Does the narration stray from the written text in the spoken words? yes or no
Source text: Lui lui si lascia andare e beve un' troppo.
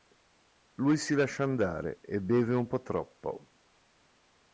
yes